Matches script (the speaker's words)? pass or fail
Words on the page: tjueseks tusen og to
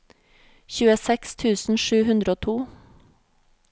fail